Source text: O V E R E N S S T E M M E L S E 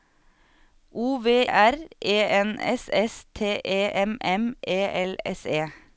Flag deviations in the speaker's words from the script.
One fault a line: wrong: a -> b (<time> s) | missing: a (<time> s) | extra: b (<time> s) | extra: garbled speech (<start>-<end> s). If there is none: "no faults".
missing: E (1.3 s)